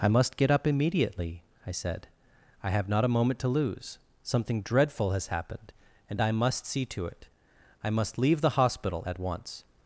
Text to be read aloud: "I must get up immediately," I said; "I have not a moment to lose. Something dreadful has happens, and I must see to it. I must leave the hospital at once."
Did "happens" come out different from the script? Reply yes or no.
yes